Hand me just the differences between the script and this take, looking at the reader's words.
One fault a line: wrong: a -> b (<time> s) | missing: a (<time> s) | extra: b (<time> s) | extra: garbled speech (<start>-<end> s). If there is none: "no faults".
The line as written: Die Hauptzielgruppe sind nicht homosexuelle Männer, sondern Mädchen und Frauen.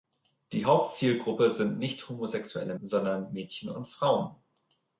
missing: Männer (2.7 s)